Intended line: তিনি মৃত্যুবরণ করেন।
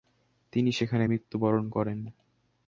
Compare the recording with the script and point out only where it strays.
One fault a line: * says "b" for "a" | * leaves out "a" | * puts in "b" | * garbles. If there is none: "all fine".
* puts in "সেখানে"